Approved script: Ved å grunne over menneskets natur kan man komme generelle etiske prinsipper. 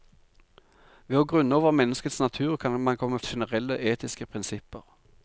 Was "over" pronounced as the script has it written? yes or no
yes